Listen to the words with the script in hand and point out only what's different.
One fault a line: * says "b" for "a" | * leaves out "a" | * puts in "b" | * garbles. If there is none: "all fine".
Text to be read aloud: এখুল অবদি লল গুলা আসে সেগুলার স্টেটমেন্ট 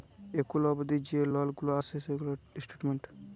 * puts in "যে"